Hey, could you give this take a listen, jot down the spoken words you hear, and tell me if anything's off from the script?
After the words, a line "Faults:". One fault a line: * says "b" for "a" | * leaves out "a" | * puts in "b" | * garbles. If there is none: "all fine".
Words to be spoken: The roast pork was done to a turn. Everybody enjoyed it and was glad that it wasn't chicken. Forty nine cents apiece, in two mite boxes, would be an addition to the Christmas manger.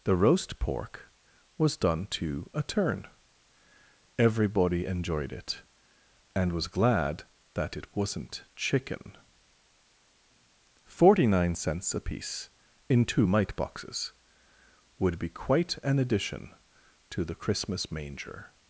The roast pork was done to a turn. Everybody enjoyed it and was glad that it wasn't chicken. Forty nine cents apiece, in two mite boxes, would be quite an addition to the Christmas manger.
Faults:
* puts in "quite"